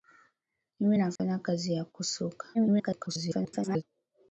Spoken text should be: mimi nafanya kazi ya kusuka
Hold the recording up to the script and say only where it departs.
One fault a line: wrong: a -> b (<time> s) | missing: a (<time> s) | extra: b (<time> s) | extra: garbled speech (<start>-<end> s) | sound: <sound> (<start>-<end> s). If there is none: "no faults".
sound: dropout (1.2-1.2 s)
extra: garbled speech (2.5-3.8 s)